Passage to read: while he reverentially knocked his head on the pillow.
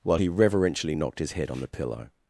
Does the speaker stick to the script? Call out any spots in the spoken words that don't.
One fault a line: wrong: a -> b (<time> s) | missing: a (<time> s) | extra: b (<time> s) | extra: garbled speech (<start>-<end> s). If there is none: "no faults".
no faults